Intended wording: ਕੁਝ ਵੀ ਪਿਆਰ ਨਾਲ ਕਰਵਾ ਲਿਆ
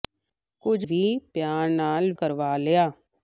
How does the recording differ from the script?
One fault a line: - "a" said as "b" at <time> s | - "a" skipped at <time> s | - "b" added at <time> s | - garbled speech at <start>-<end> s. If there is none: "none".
none